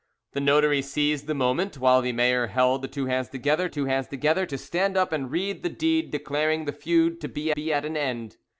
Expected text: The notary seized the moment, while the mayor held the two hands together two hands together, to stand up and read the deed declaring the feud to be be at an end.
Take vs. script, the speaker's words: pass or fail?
pass